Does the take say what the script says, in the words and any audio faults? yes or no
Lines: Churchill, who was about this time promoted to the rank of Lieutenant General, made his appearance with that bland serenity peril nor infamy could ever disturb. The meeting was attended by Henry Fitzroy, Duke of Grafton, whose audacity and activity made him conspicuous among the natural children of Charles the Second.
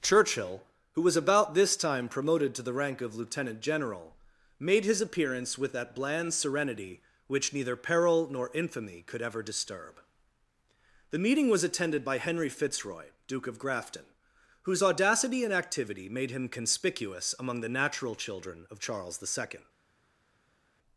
no